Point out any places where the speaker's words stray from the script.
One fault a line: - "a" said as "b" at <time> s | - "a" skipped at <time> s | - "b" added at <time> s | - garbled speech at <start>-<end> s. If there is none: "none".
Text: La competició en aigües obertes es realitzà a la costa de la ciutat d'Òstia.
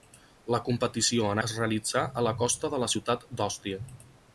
- "aigües obertes" skipped at 1.4 s